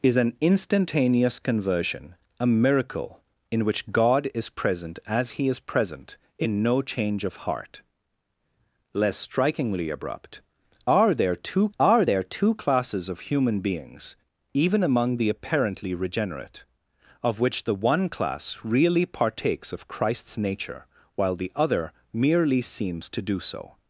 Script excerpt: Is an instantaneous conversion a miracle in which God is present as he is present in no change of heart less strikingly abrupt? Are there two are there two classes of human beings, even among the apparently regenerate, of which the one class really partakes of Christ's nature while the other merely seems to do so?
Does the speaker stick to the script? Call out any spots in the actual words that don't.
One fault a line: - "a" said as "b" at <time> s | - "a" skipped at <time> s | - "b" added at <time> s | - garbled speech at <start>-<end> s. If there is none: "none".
none